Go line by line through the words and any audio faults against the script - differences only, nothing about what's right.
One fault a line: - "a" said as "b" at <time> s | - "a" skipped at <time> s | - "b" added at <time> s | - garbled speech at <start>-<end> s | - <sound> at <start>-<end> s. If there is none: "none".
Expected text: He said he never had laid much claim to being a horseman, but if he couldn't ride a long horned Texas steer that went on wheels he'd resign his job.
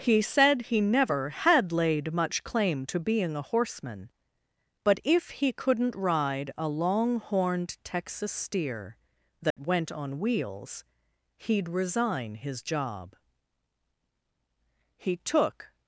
- dropout at 9.5-9.6 s
- "He took" added at 15.0 s